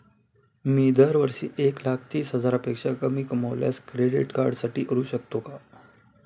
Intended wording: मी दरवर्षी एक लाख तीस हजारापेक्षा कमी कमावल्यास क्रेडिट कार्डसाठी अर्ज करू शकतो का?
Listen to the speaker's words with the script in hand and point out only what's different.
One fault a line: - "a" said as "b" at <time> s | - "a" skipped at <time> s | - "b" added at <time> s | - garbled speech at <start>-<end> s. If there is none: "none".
- "अर्ज" skipped at 4.8 s